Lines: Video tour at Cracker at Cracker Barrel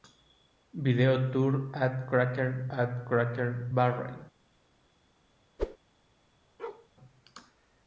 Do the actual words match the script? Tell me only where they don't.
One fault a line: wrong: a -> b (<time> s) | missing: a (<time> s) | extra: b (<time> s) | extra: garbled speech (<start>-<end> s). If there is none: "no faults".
no faults